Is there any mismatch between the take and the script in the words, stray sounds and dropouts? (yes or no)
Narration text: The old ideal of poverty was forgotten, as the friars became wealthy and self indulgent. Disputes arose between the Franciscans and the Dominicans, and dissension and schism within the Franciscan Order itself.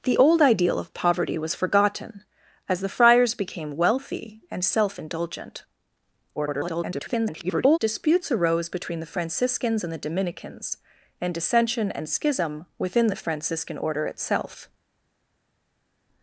yes